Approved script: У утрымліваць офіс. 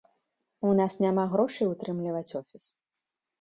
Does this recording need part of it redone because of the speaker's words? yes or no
yes